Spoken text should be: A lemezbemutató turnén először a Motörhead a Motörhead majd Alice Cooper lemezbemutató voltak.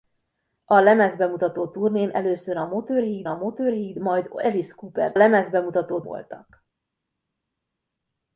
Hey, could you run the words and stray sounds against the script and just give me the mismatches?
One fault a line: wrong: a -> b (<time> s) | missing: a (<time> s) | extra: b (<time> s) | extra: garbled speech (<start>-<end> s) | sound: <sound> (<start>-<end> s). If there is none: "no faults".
no faults